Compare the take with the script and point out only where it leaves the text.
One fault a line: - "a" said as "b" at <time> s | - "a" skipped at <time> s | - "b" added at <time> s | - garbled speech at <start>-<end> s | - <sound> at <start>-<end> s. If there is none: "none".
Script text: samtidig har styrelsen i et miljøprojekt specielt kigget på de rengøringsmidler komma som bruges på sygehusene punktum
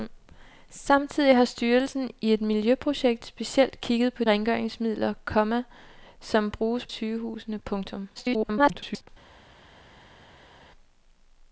- "de" skipped at 4.2 s
- "på" skipped at 6.9 s
- garbled speech at 8.1-9.1 s